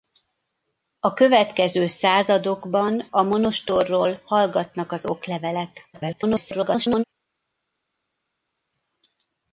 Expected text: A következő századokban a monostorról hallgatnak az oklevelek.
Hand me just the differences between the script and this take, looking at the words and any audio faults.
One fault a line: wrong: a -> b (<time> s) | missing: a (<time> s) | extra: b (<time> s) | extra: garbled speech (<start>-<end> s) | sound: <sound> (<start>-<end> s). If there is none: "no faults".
extra: garbled speech (5.9-7.0 s)